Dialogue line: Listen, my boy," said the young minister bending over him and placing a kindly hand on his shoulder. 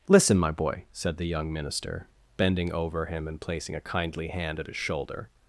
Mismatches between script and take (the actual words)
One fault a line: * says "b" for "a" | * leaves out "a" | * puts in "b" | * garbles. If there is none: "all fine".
* says "at" for "on"